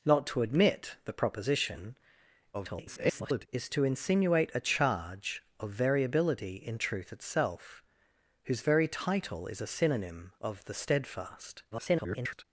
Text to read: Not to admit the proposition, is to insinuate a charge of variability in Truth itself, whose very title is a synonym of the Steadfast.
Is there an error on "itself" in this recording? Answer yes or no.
no